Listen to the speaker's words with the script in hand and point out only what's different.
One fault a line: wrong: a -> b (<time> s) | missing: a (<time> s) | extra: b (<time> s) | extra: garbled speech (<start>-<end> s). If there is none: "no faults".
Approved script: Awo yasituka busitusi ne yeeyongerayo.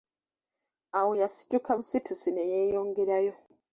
no faults